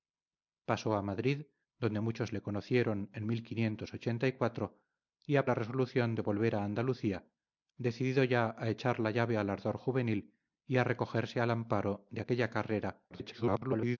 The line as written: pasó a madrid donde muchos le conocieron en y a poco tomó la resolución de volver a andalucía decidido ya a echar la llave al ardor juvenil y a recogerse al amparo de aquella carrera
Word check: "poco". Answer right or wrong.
wrong